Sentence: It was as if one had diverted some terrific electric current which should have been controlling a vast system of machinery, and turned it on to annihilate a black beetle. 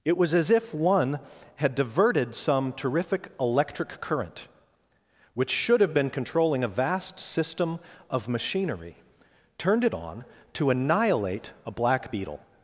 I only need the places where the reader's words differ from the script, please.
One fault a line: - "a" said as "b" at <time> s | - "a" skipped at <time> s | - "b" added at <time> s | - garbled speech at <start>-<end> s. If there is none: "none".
- "and" skipped at 9.0 s